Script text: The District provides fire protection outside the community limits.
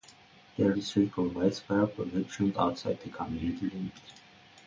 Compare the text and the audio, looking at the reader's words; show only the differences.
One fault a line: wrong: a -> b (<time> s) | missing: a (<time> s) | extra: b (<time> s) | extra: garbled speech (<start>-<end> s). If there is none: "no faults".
no faults